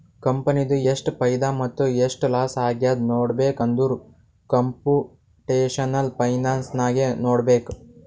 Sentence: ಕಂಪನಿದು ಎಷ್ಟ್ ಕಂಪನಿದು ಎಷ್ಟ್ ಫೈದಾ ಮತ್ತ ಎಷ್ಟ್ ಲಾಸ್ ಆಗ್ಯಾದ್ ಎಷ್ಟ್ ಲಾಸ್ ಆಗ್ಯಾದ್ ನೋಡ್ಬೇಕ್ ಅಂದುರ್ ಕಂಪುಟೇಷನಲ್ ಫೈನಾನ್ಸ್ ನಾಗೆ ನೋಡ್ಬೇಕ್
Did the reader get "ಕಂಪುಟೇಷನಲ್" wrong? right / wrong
right